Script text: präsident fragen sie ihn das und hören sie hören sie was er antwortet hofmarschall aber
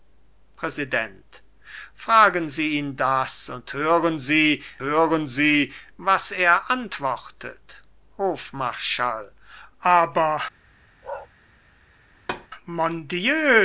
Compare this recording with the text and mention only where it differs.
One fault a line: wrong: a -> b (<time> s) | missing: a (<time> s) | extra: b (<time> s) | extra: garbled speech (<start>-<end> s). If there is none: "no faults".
no faults